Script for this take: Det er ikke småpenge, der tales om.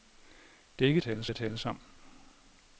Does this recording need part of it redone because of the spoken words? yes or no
yes